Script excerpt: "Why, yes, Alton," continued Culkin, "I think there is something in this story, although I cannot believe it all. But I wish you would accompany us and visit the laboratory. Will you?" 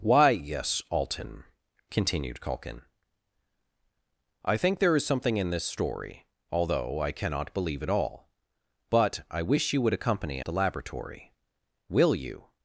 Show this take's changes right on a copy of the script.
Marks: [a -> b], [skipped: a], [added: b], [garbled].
"Why, yes, Alton," continued Culkin, "I think there is something in this story, although I cannot believe it all. But I wish you would accompany [skipped: us and visit] the laboratory. Will you?"